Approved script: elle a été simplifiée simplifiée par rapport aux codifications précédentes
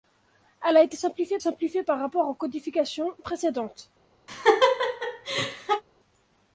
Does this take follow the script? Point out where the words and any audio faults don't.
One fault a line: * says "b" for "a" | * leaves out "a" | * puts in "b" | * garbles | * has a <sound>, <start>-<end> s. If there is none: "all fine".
* has a laugh, 4.3-5.8 s